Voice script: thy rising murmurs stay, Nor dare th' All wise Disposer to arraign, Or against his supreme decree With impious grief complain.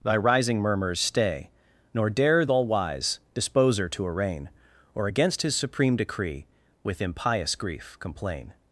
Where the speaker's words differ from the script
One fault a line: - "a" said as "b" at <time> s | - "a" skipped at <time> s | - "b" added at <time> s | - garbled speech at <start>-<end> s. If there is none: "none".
none